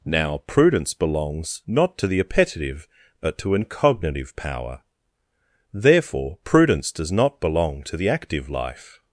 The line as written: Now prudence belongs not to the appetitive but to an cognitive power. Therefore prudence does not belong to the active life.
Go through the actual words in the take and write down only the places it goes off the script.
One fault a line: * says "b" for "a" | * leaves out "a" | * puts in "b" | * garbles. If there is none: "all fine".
all fine